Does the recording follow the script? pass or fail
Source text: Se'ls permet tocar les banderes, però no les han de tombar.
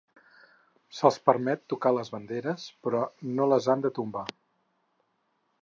pass